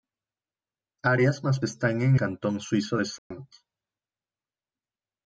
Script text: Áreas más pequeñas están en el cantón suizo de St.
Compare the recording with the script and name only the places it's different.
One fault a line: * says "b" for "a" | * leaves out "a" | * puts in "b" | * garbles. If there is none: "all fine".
* leaves out "pequeñas"
* leaves out "el"